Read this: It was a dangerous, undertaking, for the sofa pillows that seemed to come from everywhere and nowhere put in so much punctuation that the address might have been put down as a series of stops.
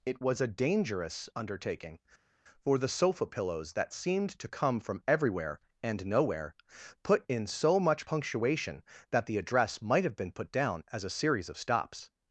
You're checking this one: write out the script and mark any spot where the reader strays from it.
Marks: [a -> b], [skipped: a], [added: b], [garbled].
It was a dangerous, undertaking, for the sofa pillows that seemed to come from everywhere and nowhere put in so much punctuation that the address might have been put down as a series of stops.